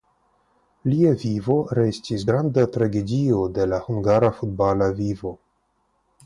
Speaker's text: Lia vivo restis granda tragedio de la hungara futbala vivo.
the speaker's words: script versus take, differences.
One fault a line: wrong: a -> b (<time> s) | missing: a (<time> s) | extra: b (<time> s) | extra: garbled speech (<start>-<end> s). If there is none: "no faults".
no faults